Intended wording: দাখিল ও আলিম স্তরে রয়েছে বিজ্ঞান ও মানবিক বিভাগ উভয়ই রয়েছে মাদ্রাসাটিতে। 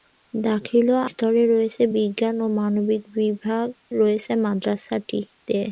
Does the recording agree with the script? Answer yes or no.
no